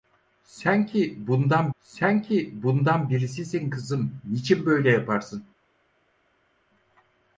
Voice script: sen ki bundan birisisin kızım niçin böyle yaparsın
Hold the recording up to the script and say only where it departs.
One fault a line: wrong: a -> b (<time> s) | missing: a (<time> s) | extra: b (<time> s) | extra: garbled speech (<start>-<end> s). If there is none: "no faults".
extra: sen ki bundan (1.8 s)